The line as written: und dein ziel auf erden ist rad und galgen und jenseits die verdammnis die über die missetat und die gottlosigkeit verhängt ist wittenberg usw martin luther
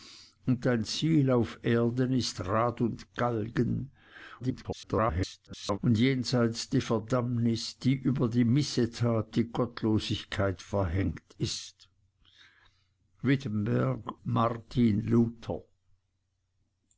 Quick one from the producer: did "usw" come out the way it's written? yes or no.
no